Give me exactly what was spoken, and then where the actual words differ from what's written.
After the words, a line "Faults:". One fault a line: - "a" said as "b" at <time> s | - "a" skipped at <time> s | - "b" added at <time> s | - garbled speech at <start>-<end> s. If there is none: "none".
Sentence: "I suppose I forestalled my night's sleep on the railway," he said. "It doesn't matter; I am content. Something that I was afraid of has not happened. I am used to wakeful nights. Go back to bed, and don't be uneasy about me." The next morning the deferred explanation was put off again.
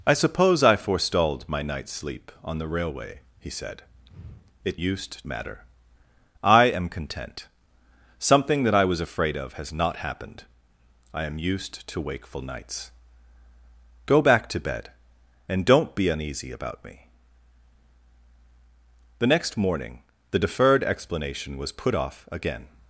"I suppose I forestalled my night's sleep on the railway," he said. "It used matter; I am content. Something that I was afraid of has not happened. I am used to wakeful nights. Go back to bed, and don't be uneasy about me." The next morning the deferred explanation was put off again.
Faults:
- "doesn't" said as "used" at 4.8 s